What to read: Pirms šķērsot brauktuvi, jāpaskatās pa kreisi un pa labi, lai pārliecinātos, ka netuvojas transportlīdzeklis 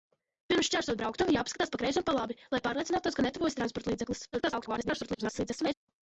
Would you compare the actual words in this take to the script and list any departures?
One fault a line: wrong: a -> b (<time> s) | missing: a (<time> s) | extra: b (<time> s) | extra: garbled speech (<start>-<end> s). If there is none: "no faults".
extra: garbled speech (4.3-5.7 s)